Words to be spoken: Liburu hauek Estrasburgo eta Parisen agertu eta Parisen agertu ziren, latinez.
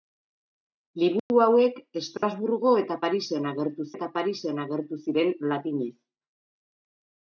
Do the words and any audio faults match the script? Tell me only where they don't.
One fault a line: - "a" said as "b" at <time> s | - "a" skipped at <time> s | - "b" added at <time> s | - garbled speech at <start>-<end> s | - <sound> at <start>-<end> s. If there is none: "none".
- dropout at 1.2-1.3 s
- dropout at 2.2-2.2 s